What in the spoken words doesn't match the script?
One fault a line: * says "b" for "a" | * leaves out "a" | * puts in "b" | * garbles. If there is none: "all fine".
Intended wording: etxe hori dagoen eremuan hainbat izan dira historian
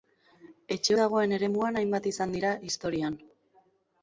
* leaves out "hori"